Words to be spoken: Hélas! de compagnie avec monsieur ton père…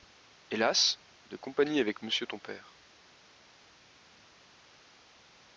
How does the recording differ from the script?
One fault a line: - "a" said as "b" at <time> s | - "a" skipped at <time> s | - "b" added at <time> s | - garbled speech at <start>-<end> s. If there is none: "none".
none